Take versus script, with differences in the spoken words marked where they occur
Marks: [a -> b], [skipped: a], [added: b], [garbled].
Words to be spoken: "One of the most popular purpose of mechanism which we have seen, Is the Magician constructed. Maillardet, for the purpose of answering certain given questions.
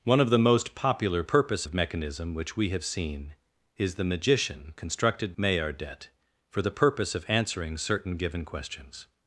"One of the most popular purpose of mechanism which we have seen, Is the Magician constructed. Maillardet, for the purpose of answering certain given questions.